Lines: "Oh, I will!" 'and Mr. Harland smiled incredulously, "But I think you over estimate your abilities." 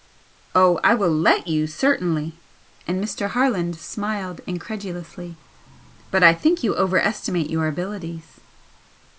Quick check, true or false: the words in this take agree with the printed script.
false